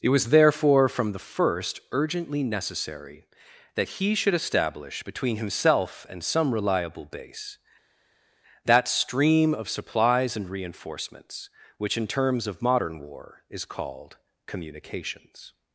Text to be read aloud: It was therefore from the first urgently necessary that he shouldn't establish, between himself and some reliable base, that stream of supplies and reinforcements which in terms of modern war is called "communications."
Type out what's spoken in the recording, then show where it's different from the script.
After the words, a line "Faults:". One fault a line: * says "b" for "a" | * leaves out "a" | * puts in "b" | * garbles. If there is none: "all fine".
It was therefore from the first urgently necessary that he should establish, between himself and some reliable base, that stream of supplies and reinforcements which in terms of modern war is called "communications."
Faults:
* says "should" for "shouldn't"